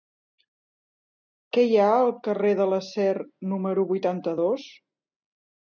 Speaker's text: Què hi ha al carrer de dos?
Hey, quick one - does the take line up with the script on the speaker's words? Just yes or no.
no